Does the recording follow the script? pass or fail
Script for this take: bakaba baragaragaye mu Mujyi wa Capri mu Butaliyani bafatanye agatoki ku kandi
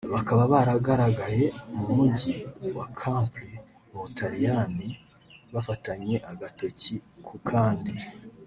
pass